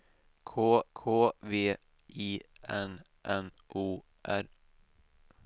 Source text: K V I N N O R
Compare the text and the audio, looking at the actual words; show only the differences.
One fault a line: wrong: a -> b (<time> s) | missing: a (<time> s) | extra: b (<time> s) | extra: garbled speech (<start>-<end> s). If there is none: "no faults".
extra: k (0.9 s)